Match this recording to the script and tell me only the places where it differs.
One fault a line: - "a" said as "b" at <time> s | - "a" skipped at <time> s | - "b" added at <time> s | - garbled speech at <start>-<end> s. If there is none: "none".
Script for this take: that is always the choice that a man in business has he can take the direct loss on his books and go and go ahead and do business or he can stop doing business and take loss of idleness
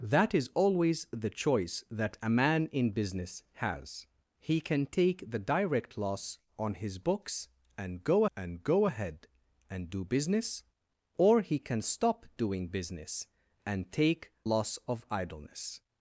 none